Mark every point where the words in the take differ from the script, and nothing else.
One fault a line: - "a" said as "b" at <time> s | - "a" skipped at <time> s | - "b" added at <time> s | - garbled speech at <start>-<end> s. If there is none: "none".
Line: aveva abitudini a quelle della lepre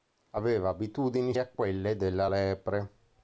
none